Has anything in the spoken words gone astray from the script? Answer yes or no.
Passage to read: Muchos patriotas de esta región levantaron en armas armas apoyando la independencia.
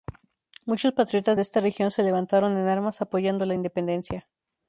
yes